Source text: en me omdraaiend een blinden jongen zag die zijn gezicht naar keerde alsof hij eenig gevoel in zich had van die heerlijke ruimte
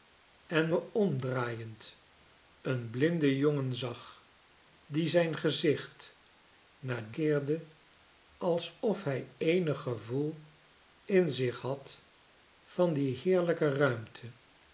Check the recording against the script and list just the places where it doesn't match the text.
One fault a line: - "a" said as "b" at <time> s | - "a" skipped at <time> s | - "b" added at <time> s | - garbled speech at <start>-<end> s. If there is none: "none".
none